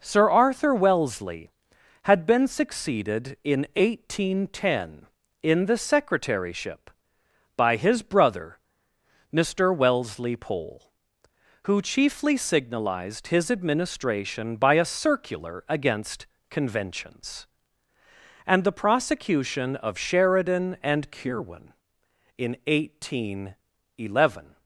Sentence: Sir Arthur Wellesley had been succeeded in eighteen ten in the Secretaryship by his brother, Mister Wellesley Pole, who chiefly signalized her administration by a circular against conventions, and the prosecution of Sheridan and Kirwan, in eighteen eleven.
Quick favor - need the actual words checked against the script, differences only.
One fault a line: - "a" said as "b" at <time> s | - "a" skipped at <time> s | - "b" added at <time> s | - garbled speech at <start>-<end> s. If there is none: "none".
- "her" said as "his" at 13.3 s